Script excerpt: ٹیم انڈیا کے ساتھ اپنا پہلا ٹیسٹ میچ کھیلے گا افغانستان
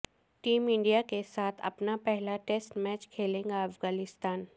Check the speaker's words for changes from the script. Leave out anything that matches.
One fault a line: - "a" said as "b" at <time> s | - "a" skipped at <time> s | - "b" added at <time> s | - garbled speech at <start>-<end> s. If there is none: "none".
none